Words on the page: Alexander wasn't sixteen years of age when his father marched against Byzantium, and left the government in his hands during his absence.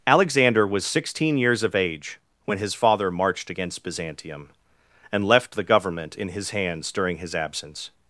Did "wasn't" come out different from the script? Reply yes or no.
yes